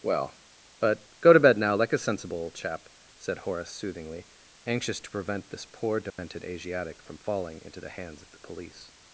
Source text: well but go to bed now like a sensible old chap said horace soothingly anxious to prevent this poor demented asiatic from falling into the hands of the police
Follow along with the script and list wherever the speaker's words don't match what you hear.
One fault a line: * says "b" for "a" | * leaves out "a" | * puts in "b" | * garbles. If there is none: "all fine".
all fine